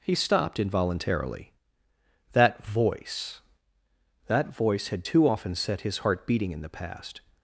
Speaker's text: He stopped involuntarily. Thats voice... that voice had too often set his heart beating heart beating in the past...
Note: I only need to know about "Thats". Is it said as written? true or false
false